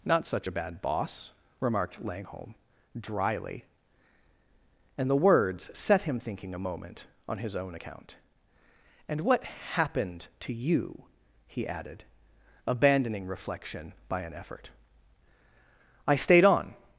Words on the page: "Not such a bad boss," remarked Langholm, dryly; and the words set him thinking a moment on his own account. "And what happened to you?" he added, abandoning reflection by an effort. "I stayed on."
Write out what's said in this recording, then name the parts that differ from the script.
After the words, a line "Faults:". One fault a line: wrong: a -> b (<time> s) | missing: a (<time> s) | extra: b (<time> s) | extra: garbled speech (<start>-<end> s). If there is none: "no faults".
"Not such a bad boss," remarked Langholm, dryly; and the words set him thinking a moment on his own account. "And what happened to you?" he added, abandoning reflection by an effort. "I stayed on."
Faults:
no faults